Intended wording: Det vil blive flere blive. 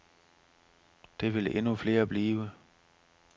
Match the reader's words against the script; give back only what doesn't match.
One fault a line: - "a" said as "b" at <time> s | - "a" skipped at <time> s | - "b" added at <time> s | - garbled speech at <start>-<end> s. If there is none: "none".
- "blive" said as "endnu" at 1.6 s